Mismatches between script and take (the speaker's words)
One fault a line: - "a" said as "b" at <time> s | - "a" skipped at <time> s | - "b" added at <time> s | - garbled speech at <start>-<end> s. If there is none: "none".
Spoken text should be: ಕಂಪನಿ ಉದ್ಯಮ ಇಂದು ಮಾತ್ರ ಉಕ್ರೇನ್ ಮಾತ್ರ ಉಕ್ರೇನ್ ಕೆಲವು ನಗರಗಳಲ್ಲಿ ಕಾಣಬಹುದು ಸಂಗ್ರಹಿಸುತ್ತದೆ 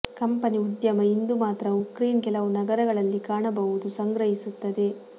- "ಮಾತ್ರ ಉಕ್ರೇನ್" skipped at 2.2 s